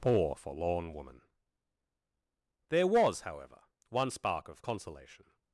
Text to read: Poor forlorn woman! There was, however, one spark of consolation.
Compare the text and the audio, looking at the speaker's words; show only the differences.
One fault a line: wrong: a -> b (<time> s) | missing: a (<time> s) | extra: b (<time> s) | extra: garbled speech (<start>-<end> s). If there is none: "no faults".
no faults